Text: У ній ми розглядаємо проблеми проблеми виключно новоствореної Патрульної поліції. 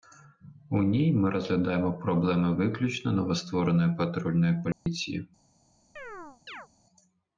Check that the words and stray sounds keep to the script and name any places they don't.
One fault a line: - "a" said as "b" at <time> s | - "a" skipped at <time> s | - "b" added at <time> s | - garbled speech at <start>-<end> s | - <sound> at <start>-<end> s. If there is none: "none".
- "проблеми" skipped at 2.6 s
- dropout at 4.7-4.9 s
- chirp at 6.0-6.7 s